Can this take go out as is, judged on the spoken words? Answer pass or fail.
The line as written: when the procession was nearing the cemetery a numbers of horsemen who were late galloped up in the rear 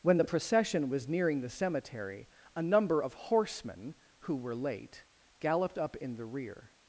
fail